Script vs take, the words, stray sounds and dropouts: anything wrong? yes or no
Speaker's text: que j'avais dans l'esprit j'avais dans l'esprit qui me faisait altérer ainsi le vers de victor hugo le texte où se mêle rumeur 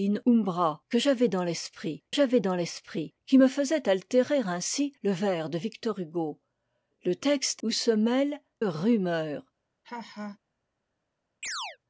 yes